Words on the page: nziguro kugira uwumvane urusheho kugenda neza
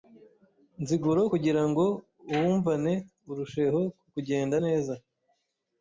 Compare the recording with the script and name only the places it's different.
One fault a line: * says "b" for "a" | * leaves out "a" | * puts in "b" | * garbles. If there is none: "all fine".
* puts in "ngo"